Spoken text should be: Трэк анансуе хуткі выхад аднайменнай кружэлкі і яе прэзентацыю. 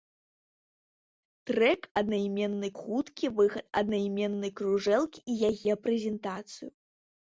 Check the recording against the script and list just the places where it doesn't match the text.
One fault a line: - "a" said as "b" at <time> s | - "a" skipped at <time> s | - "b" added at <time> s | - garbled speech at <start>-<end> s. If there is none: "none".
- "анансуе" said as "аднайменнай" at 2.0 s